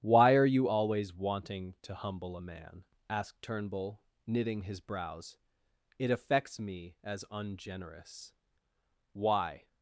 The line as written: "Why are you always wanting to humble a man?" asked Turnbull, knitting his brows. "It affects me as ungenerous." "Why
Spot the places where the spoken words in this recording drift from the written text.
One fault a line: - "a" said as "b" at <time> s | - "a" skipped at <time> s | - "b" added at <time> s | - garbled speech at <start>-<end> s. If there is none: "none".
none